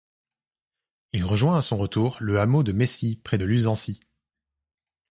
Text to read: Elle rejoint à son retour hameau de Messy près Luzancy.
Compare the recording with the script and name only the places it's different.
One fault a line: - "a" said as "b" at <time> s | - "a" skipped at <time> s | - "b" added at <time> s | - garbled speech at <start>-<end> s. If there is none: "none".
- "Elle" said as "Il" at 1.1 s
- "le" added at 2.2 s
- "de" added at 3.3 s